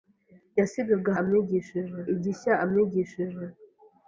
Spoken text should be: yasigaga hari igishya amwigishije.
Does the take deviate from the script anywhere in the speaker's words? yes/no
yes